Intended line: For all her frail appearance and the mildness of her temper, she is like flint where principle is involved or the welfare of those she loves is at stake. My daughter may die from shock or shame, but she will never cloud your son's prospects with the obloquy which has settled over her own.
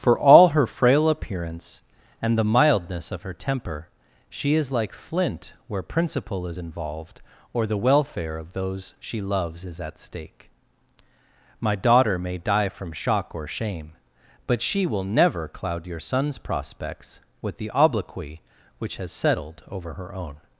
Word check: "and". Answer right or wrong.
right